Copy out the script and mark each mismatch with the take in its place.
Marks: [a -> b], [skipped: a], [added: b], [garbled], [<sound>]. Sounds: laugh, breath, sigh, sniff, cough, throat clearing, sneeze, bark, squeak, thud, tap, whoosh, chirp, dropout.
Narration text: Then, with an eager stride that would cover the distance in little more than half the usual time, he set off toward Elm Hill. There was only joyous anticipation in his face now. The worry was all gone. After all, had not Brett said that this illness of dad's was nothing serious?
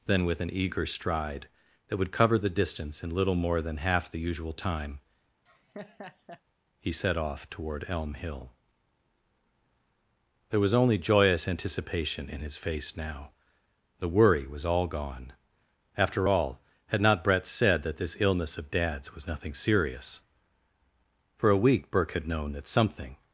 Then, with an eager stride that would cover the distance in little more than half the usual time, [laugh] he set off toward Elm Hill. There was only joyous anticipation in his face now. The worry was all gone. After all, had not Brett said that this illness of dad's was nothing serious? [added: For a week Burke had known that something]